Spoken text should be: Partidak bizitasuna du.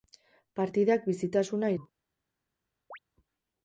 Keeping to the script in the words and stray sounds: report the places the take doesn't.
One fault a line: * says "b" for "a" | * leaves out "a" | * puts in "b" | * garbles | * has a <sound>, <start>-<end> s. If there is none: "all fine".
* has a chirp, 2.9-3.0 s